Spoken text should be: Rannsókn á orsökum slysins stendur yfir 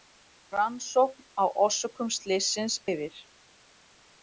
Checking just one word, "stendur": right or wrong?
wrong